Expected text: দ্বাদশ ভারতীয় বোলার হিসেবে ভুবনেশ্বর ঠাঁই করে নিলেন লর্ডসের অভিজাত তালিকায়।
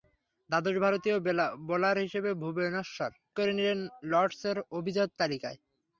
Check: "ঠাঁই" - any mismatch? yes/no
yes